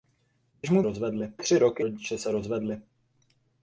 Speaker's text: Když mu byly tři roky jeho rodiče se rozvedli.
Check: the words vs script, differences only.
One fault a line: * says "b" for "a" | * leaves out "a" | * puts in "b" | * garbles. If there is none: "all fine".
* says "rozvedli" for "byly"
* leaves out "jeho"